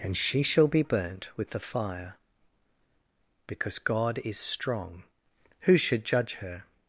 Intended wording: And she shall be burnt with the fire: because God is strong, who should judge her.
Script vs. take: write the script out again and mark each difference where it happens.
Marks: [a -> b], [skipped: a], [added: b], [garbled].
And she shall be burnt with the fire: because God is strong, who should judge her.